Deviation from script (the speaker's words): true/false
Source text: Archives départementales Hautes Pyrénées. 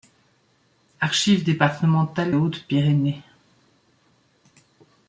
false